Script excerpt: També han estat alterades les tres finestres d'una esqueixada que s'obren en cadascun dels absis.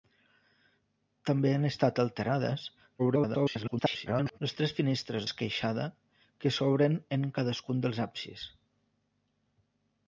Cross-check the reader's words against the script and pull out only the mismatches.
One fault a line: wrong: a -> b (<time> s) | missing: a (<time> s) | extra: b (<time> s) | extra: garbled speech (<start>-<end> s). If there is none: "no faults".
extra: garbled speech (3.0-4.4 s)
missing: d'una (5.3 s)